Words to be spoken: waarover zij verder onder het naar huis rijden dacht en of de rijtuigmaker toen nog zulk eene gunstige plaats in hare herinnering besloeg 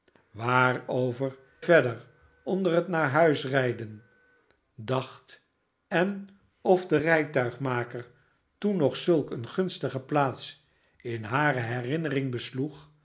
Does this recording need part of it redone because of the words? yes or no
yes